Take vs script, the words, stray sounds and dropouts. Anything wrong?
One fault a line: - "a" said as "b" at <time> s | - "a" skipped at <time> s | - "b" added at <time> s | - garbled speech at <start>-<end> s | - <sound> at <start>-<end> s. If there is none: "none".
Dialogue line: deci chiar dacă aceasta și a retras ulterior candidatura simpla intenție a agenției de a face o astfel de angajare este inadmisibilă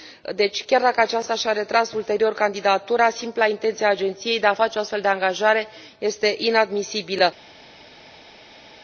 none